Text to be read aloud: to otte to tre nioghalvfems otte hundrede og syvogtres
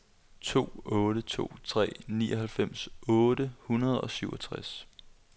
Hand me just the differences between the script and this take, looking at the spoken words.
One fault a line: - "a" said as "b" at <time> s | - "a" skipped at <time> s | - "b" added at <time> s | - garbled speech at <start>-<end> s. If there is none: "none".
none